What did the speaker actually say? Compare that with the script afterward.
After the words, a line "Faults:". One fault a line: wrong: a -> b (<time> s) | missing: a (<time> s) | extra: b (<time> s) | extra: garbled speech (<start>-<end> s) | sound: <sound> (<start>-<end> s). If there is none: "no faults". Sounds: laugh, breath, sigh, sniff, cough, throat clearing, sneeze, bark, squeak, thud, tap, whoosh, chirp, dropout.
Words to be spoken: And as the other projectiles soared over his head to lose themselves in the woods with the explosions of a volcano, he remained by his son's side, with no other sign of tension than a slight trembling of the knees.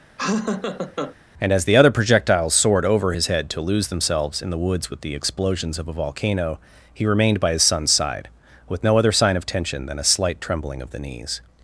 And as the other projectiles soared over his head to lose themselves in the woods with the explosions of a volcano, he remained by his son's side, with no other sign of tension than a slight trembling of the knees.
Faults:
sound: laugh (0.2-1.2 s)